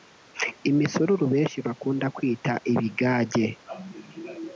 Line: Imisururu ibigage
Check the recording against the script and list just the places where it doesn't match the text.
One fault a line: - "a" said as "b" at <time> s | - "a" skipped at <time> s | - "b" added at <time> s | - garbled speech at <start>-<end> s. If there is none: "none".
- "benshi bakunda kwita" added at 1.3 s